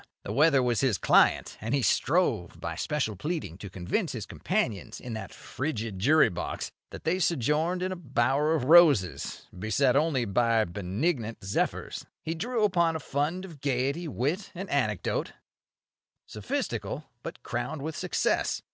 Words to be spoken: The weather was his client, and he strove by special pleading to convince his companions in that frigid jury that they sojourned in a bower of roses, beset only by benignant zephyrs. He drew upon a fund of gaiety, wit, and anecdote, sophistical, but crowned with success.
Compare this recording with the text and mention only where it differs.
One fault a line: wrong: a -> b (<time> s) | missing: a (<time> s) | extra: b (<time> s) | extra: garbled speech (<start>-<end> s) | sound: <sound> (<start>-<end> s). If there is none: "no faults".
extra: box (6.3 s)